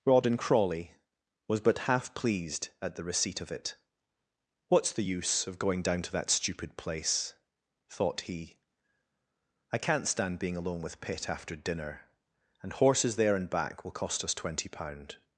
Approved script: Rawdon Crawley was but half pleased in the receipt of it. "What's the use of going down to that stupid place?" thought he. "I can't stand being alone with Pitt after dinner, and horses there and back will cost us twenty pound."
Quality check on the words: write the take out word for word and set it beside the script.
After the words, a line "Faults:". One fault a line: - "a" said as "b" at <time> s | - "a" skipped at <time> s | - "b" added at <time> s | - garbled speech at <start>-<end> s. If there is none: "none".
Rawdon Crawley was but half pleased at the receipt of it. "What's the use of going down to that stupid place?" thought he. "I can't stand being alone with Pitt after dinner, and horses there and back will cost us twenty pound."
Faults:
- "in" said as "at" at 2.8 s